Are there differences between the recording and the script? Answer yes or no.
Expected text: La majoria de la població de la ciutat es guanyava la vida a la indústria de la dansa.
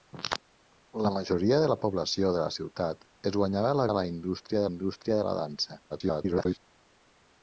yes